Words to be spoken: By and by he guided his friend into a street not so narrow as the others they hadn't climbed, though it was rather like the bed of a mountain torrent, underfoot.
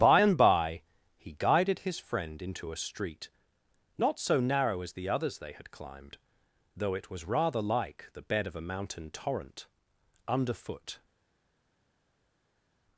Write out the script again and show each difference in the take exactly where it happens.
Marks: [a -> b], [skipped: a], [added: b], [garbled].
By and by he guided his friend into a street not so narrow as the others they [hadn't -> had] climbed, though it was rather like the bed of a mountain torrent, underfoot.